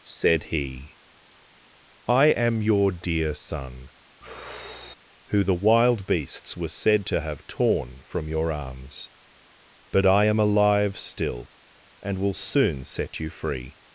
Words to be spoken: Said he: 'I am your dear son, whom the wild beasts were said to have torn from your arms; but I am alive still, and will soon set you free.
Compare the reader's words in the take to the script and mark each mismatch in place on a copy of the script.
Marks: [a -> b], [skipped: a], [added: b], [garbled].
Said he: 'I am your dear son, [whom -> who] the wild beasts were said to have torn from your arms; but I am alive still, and will soon set you free.